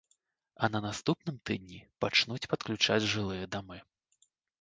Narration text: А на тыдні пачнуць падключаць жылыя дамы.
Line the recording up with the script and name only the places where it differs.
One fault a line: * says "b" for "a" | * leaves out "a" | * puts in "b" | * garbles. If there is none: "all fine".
* puts in "наступным"